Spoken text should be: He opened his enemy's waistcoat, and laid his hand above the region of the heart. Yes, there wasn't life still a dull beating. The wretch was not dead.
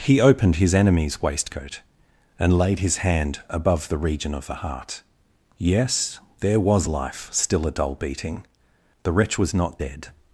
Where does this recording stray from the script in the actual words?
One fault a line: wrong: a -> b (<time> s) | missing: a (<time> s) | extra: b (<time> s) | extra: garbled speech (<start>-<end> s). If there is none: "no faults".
wrong: wasn't -> was (6.6 s)